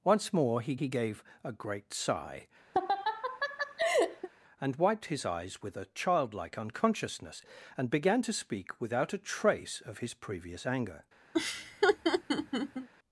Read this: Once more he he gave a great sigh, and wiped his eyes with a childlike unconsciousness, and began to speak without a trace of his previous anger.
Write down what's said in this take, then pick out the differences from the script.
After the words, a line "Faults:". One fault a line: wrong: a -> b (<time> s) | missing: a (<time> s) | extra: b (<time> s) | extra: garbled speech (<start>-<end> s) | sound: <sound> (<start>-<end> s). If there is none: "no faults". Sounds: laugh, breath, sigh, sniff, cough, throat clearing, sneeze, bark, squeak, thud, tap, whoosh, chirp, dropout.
Once more he he gave a great sigh, and wiped his eyes with a childlike unconsciousness, and began to speak without a trace of his previous anger.
Faults:
sound: laugh (2.7-4.3 s)
sound: laugh (11.3-12.9 s)